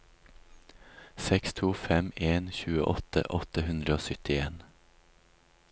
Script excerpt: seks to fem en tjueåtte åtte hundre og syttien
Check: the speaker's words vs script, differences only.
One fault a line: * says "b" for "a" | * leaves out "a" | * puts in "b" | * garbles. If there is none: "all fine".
all fine